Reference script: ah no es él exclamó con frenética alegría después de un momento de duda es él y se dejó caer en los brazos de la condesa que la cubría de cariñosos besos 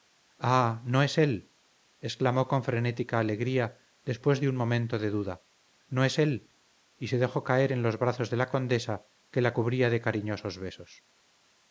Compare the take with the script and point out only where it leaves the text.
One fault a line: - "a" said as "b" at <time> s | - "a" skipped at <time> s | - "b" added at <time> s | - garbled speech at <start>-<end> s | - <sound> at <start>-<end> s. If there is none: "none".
- "no" added at 5.9 s